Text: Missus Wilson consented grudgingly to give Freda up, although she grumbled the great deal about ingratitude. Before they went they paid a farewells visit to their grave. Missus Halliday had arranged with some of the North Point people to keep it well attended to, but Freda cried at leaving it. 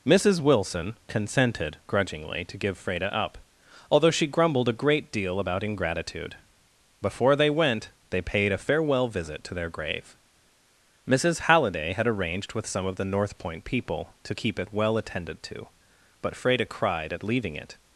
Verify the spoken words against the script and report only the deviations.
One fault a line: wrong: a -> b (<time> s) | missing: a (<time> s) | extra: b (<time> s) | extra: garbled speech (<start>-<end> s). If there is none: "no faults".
wrong: the -> a (4.7 s)
wrong: farewells -> farewell (8.6 s)